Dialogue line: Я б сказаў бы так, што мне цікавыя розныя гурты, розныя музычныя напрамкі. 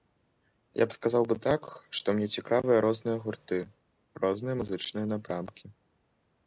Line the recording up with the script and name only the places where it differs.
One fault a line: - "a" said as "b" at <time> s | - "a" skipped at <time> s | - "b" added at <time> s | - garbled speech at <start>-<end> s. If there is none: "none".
none